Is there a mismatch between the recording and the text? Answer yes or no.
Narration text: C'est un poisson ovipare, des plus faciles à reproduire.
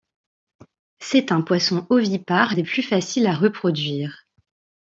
no